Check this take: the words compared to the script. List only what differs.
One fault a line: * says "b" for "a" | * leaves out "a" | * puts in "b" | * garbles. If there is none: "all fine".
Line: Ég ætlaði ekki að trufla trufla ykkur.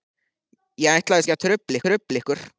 all fine